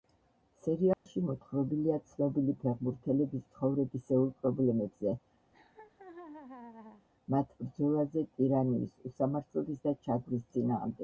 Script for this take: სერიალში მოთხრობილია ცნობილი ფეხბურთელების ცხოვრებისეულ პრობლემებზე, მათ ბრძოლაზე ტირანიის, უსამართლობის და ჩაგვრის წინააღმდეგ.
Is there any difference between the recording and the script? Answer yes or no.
no